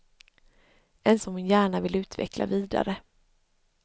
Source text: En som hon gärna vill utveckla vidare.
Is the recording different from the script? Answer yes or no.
no